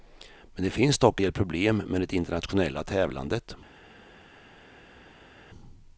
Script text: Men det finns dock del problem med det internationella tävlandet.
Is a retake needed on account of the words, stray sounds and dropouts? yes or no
no